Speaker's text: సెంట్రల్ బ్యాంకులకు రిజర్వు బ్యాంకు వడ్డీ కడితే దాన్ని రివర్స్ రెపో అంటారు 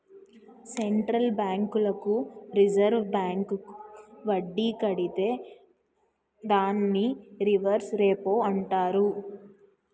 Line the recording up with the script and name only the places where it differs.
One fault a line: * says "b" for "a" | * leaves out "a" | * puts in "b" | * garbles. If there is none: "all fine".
all fine